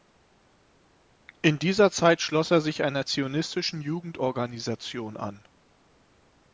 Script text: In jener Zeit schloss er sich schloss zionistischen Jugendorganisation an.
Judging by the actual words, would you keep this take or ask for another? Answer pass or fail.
fail